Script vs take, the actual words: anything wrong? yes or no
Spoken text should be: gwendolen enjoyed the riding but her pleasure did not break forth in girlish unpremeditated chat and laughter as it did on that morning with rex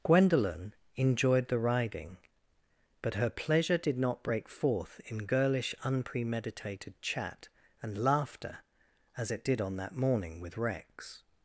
no